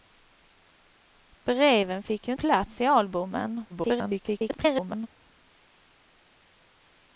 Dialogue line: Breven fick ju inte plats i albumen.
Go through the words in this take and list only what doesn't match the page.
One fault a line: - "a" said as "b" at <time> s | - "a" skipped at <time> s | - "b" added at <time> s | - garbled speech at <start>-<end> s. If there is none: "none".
- "inte" skipped at 2.3 s
- garbled speech at 3.7-5.1 s